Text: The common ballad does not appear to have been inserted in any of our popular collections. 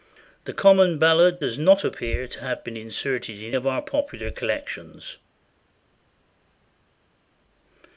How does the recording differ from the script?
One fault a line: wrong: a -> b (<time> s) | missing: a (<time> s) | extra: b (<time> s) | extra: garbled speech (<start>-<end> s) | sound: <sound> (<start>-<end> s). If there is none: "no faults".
missing: any (3.5 s)